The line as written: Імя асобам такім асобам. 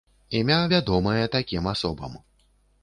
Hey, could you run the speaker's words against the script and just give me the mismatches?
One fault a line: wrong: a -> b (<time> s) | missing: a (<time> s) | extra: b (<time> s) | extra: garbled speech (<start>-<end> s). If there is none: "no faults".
wrong: асобам -> вядомае (0.7 s)